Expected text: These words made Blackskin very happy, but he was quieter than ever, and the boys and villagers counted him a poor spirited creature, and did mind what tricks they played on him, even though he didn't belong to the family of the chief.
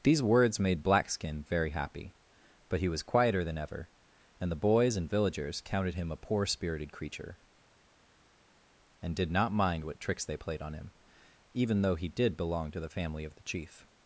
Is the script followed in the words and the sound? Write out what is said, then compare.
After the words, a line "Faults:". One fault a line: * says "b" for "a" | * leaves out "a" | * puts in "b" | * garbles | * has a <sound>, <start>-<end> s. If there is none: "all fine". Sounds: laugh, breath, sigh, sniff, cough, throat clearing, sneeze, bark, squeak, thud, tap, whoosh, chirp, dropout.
These words made Blackskin very happy, but he was quieter than ever, and the boys and villagers counted him a poor spirited creature, and did not mind what tricks they played on him, even though he did belong to the family of the chief.
Faults:
* puts in "not"
* says "did" for "didn't"